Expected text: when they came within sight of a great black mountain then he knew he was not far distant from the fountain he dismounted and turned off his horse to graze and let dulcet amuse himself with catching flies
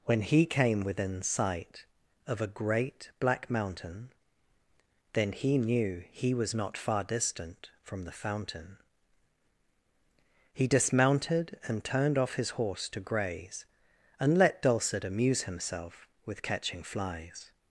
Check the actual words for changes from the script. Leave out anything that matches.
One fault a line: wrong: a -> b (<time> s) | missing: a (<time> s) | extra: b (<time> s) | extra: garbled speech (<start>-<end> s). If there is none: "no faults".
wrong: they -> he (0.2 s)